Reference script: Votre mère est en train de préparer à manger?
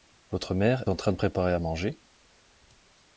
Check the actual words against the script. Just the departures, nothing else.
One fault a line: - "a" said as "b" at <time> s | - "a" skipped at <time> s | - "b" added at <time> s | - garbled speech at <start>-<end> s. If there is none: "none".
- "est" skipped at 0.8 s